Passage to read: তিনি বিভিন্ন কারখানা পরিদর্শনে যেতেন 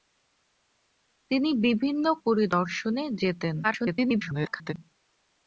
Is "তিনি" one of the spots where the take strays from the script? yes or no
no